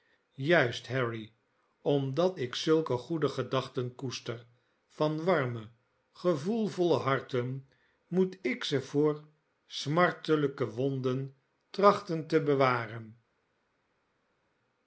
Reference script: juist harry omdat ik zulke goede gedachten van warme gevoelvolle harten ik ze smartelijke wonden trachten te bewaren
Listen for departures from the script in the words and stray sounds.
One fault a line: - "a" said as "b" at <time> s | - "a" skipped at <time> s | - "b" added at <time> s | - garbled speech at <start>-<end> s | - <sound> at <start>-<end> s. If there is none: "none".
- "koester" added at 3.9 s
- "moet" added at 8.1 s
- "voor" added at 8.8 s